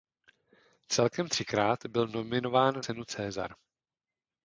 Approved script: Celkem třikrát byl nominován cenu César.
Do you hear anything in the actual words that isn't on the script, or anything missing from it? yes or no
no